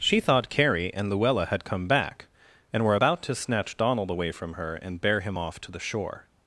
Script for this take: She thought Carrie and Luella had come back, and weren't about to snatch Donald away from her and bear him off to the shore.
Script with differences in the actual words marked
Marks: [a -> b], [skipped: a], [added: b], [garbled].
She thought Carrie and Luella had come back, and [weren't -> were] about to snatch Donald away from her and bear him off to the shore.